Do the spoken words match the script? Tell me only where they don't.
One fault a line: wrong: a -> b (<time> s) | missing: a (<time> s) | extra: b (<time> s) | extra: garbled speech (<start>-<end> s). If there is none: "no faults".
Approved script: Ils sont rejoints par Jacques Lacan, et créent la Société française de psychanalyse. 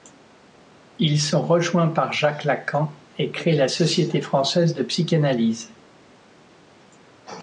no faults